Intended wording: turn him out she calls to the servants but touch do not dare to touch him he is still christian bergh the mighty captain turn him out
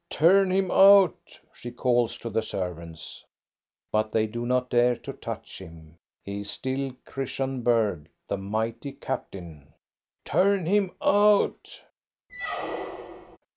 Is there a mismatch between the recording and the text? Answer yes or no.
yes